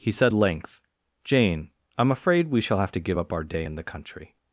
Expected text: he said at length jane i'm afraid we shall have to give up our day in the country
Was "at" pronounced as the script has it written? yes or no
no